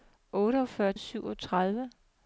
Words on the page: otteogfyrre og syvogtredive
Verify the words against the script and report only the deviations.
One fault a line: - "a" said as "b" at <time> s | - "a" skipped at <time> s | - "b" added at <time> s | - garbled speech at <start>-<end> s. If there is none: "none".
none